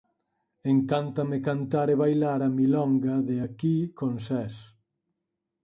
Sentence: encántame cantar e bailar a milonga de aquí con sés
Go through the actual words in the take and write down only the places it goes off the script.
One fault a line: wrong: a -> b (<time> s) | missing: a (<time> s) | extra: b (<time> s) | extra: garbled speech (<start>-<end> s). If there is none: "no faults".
no faults